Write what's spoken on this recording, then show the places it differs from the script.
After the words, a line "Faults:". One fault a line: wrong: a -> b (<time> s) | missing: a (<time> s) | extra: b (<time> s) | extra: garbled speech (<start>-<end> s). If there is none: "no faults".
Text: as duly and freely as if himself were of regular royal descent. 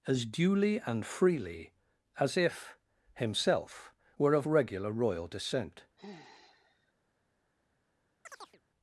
as duly and freely as if himself were of regular royal descent.
Faults:
no faults